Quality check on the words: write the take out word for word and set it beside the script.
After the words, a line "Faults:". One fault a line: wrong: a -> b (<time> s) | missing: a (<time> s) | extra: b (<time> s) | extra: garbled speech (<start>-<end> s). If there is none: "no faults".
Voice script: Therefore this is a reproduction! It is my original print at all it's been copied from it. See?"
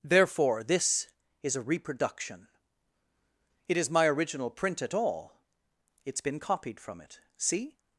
Therefore this is a reproduction! It is my original print at all it's been copied from it. See?"
Faults:
no faults